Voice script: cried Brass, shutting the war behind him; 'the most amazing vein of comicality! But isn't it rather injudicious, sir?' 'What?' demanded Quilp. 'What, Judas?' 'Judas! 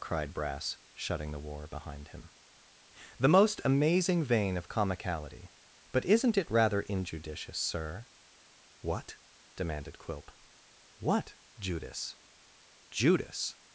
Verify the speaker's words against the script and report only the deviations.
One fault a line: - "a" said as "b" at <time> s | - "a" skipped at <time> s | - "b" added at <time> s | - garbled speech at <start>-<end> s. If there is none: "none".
none